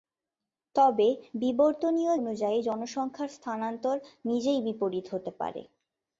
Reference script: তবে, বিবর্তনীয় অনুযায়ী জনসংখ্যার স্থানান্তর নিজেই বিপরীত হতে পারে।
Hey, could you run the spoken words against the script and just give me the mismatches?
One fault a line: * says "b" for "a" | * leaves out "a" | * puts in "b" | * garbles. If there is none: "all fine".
all fine